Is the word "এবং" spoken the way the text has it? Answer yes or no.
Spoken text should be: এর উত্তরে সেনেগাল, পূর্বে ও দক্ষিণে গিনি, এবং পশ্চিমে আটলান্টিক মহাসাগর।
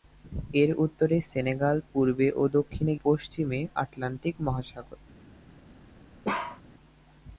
no